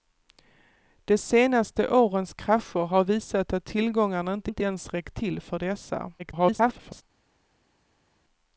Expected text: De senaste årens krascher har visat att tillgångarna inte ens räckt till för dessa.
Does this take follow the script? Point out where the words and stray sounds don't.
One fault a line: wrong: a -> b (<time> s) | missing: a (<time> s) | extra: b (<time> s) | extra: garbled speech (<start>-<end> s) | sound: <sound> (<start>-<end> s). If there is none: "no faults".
extra: inte (4.5 s)
extra: garbled speech (6.2-7.0 s)